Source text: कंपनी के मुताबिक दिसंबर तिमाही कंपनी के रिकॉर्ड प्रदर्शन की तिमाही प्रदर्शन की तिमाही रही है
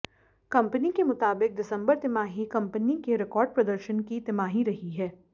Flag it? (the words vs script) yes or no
yes